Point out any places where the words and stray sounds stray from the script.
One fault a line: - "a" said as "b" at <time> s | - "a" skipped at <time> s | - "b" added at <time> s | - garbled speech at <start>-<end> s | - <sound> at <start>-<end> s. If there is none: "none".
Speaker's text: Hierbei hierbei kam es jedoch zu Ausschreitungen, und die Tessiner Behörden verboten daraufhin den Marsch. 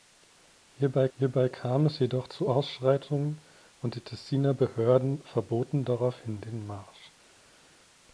none